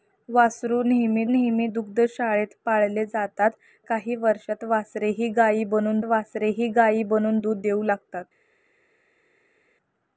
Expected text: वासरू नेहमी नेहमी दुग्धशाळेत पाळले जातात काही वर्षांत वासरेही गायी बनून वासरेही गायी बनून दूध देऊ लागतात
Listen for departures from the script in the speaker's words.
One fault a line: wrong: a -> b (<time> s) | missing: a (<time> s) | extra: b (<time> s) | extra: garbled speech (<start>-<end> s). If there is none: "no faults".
no faults